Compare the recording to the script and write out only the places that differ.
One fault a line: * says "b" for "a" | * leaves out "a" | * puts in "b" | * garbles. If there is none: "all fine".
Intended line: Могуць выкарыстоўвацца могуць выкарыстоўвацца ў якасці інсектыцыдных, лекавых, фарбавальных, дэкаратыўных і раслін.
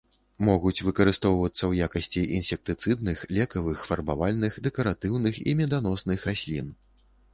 * leaves out "могуць выкарыстоўвацца"
* puts in "меданосных"